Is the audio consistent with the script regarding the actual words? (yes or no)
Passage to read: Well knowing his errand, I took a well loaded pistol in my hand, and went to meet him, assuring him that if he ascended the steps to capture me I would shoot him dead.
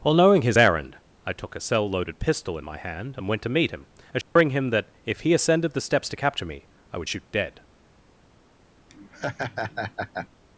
no